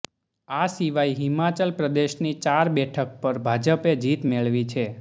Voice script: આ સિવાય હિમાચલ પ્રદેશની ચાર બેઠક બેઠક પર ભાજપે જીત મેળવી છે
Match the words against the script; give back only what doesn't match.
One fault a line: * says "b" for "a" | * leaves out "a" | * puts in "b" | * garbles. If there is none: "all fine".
* leaves out "બેઠક"